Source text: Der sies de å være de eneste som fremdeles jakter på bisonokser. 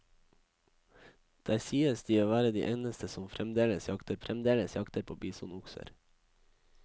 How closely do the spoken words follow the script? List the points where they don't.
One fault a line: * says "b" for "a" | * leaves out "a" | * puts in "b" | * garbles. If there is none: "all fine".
* puts in "fremdeles jakter"